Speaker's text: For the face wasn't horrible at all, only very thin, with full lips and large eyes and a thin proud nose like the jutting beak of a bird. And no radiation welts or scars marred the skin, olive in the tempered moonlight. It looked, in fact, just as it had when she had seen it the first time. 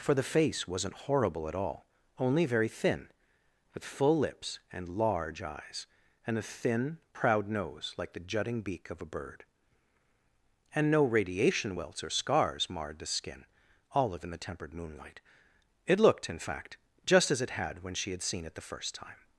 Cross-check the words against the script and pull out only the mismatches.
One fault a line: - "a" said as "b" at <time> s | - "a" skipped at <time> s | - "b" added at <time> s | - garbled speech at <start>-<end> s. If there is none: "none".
none